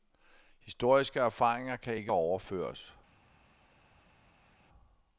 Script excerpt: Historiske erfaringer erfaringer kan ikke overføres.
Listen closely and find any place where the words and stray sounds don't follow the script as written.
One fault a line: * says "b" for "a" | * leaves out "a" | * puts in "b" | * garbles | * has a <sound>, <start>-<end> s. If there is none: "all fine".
* leaves out "erfaringer"